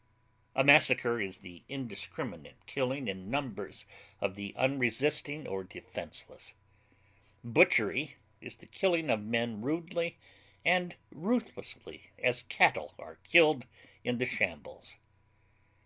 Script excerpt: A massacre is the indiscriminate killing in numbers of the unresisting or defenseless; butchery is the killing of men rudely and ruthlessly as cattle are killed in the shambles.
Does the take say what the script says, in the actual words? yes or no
yes